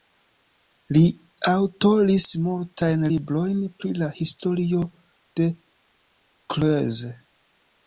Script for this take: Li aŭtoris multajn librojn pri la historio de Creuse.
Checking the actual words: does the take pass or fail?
pass